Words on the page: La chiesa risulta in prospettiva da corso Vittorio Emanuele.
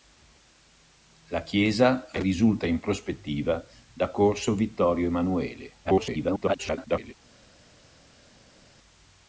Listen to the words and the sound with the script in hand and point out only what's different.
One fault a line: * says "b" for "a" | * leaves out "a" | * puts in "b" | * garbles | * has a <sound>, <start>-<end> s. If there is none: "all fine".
* garbles